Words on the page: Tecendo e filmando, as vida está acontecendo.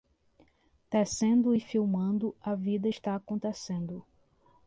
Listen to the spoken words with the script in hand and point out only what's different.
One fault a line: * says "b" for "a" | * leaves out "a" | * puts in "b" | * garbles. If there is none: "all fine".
* says "a" for "as"